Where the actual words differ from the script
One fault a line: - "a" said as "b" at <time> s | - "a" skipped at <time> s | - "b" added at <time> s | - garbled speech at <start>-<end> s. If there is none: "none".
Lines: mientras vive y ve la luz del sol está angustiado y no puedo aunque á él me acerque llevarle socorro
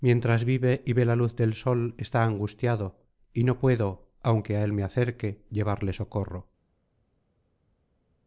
none